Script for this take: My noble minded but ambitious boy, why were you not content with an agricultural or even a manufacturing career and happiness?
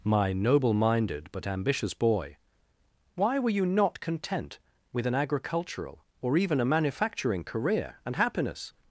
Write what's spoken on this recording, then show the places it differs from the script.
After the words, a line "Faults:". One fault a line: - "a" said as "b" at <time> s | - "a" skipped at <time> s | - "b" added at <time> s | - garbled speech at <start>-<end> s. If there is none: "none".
My noble minded but ambitious boy, why were you not content with an agricultural or even a manufacturing career and happiness?
Faults:
none